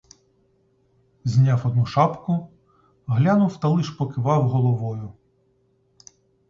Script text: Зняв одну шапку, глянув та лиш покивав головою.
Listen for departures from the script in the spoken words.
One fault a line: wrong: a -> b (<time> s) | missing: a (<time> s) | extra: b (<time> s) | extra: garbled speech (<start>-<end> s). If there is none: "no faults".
no faults